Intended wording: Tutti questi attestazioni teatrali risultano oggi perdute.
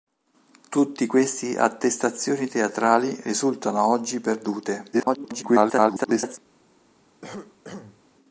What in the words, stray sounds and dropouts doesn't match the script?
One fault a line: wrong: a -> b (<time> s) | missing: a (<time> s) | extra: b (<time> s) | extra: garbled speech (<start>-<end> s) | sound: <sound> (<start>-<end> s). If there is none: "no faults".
extra: garbled speech (4.9-6.4 s)
sound: cough (7.2-8.0 s)